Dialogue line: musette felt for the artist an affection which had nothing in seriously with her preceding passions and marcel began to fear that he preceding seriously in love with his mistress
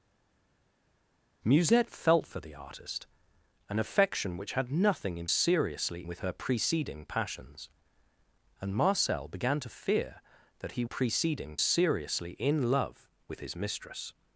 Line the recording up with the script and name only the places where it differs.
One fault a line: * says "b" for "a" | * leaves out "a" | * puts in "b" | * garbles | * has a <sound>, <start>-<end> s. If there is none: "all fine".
all fine